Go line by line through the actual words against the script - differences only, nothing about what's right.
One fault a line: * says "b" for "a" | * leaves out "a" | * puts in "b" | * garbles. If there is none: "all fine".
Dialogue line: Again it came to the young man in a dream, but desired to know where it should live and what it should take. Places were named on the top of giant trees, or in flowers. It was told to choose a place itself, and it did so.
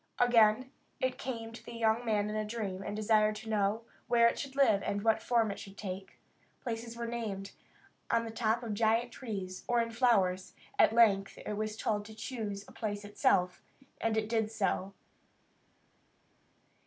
* says "and" for "but"
* puts in "form"
* puts in "At length"